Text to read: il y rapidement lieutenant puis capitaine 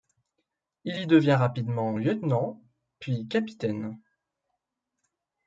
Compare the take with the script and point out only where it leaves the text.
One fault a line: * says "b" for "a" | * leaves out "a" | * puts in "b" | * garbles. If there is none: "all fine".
* puts in "devient"